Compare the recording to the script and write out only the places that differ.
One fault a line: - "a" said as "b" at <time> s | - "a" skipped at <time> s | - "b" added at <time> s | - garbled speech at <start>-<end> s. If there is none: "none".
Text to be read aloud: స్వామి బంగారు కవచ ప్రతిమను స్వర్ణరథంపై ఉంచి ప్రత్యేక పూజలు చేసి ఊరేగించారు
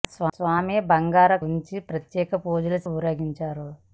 - "కవచ ప్రతిమను స్వర్ణరథంపై" skipped at 1.4 s
- "చేసి" skipped at 2.8 s